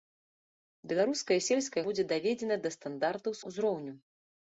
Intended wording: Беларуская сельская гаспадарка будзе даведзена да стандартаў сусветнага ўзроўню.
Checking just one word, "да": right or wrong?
right